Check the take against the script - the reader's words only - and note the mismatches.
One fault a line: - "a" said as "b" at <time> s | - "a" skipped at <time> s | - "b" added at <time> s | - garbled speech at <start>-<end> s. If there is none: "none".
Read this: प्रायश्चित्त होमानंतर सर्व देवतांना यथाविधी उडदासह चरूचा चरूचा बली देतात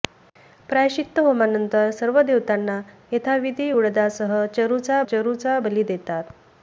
none